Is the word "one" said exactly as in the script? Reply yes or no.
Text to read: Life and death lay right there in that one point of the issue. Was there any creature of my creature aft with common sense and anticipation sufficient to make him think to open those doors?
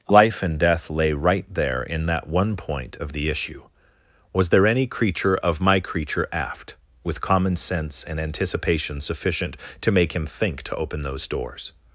yes